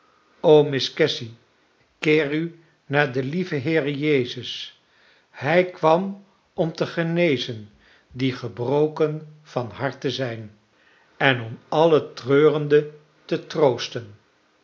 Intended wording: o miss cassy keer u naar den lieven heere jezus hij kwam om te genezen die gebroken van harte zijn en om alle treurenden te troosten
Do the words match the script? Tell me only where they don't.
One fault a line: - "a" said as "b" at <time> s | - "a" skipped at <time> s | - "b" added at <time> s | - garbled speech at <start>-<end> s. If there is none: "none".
none